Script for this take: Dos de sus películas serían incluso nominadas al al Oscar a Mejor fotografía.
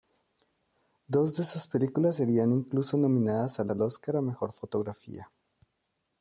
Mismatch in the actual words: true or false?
false